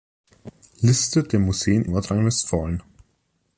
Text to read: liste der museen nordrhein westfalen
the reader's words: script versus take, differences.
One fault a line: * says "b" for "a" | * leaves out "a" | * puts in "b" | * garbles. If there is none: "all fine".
all fine